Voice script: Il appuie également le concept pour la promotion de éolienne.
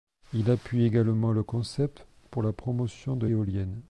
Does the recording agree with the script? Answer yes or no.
yes